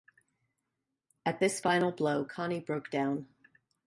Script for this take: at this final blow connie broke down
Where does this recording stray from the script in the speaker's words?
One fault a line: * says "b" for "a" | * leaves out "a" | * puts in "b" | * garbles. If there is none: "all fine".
all fine